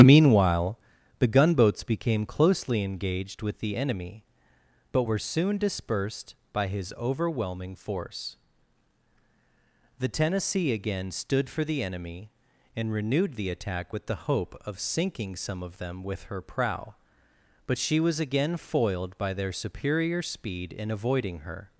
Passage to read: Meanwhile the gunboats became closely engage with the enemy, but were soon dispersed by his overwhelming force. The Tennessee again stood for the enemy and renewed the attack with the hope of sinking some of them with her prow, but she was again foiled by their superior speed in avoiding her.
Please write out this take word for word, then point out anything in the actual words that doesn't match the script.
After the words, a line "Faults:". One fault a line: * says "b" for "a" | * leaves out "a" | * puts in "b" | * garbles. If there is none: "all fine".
Meanwhile the gunboats became closely engaged with the enemy, but were soon dispersed by his overwhelming force. The Tennessee again stood for the enemy and renewed the attack with the hope of sinking some of them with her prow, but she was again foiled by their superior speed in avoiding her.
Faults:
* says "engaged" for "engage"